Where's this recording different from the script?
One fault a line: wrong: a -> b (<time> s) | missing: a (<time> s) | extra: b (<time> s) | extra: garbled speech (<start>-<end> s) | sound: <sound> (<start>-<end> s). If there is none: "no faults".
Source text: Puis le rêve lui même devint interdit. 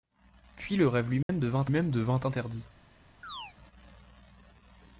sound: dropout (1.2-1.3 s)
extra: même devint (1.7 s)
sound: chirp (3.2-3.5 s)